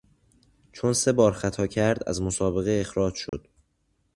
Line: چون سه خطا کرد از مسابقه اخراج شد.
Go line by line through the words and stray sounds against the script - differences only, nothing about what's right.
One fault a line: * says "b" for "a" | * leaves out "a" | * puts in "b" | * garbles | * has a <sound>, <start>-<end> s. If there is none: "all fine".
* puts in "بار"
* has a dropout, 3.3-3.3 s